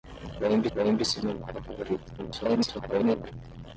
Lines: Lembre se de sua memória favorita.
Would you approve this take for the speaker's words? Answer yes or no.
no